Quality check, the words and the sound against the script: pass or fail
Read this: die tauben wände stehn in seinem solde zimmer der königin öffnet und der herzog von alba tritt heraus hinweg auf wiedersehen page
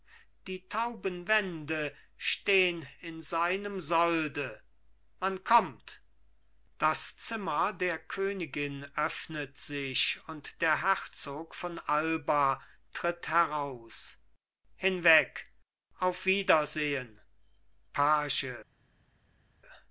fail